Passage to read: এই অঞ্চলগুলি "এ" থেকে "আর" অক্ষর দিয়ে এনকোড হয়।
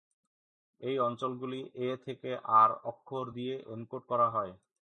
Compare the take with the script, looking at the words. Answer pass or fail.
fail